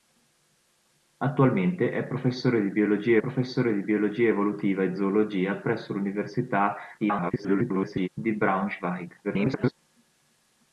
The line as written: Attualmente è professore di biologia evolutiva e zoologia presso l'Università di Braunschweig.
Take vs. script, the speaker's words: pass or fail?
fail